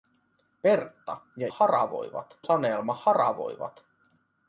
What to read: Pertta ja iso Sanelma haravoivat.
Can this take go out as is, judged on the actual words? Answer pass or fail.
fail